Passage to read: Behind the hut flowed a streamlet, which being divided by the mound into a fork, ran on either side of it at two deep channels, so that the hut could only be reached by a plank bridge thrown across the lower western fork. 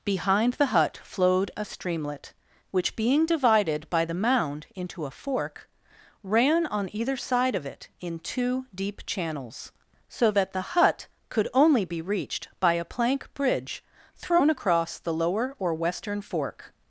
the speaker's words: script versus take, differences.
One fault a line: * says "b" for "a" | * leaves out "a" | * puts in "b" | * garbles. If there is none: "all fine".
* says "in" for "at"
* puts in "or"